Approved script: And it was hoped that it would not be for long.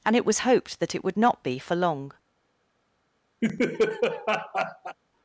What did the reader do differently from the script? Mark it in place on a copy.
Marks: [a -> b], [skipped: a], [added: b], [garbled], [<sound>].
And it was hoped that it would not be for long. [laugh]